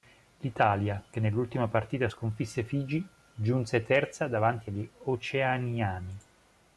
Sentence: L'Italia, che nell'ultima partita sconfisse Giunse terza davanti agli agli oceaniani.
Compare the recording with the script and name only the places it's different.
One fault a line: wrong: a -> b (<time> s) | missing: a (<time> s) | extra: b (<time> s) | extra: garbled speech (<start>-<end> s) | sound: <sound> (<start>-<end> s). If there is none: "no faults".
extra: Figi (2.6 s)
missing: agli (4.9 s)